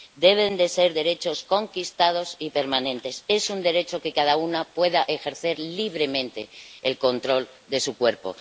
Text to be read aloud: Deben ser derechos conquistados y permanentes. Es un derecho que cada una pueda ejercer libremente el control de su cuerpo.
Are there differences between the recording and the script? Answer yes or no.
no